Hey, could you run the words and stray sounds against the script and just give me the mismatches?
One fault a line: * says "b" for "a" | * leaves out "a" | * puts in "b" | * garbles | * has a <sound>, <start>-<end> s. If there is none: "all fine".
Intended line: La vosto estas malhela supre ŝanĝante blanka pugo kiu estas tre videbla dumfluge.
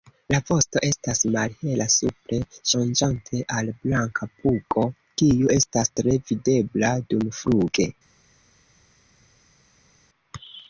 * puts in "al"